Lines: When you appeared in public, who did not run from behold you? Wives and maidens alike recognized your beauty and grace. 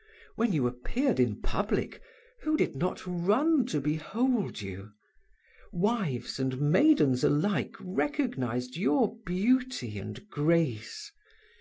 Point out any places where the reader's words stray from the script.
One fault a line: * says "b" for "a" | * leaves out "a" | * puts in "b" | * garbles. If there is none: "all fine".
* says "to" for "from"